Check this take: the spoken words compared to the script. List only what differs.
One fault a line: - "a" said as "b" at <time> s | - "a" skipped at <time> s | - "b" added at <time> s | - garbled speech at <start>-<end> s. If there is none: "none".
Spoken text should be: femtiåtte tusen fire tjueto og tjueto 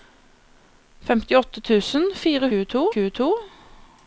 none